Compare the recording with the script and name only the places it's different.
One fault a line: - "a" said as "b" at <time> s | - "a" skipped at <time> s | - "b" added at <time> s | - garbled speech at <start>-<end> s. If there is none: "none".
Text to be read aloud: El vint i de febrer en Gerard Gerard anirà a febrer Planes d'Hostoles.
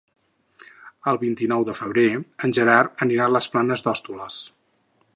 - "nou" added at 1.5 s
- "Gerard" skipped at 3.1 s
- "febrer" said as "les" at 3.4 s